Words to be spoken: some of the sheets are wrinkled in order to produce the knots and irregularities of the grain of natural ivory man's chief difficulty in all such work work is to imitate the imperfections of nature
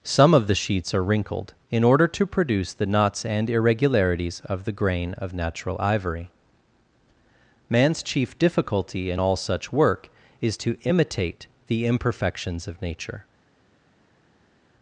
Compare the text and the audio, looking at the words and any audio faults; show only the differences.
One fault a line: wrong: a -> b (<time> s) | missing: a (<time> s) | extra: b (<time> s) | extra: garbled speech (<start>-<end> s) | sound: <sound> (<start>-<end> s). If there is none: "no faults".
missing: work (10.1 s)